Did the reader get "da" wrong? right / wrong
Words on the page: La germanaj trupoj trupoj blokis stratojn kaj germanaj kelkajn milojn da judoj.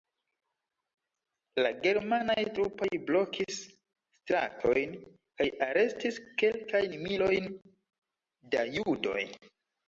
right